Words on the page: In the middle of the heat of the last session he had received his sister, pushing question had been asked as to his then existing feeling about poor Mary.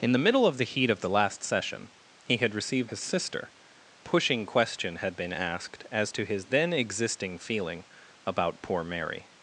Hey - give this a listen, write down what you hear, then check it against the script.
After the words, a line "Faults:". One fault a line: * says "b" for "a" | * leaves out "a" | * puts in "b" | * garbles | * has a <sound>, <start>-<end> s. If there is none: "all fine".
In the middle of the heat of the last session he had received his sister, pushing question had been asked as to his then existing feeling about poor Mary.
Faults:
all fine